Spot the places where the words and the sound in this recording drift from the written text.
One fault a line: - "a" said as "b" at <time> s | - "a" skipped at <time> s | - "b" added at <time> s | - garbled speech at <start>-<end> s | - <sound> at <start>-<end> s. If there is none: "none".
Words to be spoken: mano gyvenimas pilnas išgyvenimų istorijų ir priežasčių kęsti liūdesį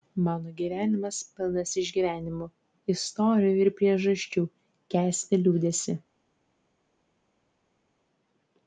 none